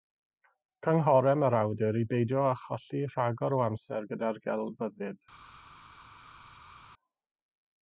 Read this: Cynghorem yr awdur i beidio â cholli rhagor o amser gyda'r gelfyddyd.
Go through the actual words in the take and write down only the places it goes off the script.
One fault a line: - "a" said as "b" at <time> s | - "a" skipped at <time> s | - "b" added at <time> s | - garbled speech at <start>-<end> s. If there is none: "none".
none